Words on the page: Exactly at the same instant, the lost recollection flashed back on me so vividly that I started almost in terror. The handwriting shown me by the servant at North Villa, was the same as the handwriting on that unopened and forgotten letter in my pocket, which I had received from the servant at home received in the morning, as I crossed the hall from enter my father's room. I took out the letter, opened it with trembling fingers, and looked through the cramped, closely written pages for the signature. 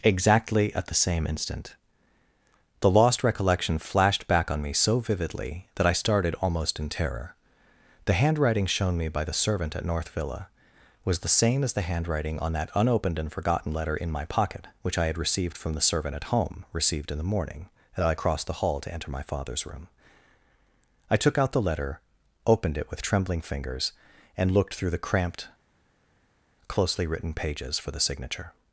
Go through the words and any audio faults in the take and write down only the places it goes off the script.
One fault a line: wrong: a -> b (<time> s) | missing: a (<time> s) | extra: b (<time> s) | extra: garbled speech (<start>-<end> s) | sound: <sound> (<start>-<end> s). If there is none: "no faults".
wrong: from -> to (18.8 s)